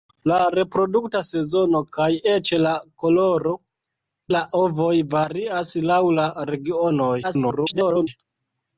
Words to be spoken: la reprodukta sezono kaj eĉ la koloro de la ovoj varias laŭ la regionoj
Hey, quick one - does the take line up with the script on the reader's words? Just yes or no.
no